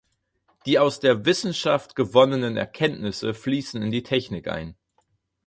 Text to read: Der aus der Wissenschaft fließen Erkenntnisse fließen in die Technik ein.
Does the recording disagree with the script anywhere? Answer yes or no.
yes